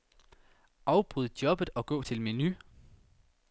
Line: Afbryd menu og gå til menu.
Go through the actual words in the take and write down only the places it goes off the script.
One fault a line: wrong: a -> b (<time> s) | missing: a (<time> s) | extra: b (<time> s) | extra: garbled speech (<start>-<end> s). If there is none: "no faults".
wrong: menu -> jobbet (1.4 s)